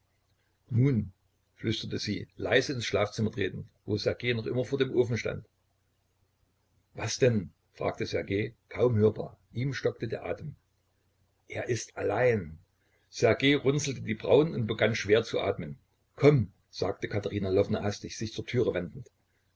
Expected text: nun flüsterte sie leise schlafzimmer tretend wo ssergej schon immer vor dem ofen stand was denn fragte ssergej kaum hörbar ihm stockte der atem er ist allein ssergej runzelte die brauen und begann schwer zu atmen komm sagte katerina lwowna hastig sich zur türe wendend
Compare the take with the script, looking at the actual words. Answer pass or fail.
fail